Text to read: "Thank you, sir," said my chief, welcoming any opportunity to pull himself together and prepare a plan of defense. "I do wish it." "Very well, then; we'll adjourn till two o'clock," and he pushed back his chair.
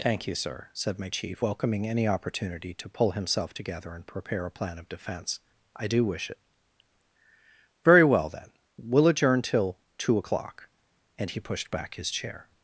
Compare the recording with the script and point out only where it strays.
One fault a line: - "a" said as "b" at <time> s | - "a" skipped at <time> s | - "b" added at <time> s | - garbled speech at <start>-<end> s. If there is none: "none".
none